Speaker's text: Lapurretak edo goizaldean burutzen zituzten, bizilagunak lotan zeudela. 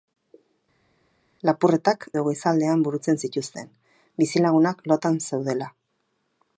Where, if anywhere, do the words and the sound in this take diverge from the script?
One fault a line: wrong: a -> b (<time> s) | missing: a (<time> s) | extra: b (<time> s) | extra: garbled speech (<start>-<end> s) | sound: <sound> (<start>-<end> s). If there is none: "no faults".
no faults